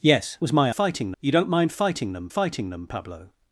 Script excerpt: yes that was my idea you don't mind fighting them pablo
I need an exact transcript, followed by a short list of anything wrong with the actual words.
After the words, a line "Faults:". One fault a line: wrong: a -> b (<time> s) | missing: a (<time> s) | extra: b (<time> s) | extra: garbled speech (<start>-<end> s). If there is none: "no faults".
yes was my fighting you don't mind fighting them fighting them pablo
Faults:
missing: that (0.4 s)
wrong: idea -> fighting (0.7 s)
extra: fighting them (2.3 s)